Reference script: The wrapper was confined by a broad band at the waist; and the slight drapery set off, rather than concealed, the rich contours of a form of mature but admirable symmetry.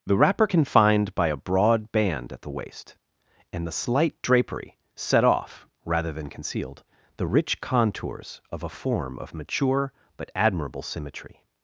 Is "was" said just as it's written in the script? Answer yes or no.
no